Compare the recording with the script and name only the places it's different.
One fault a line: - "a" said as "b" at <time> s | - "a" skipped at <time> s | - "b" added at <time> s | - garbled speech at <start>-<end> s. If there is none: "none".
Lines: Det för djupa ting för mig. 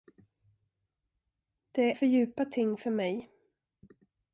none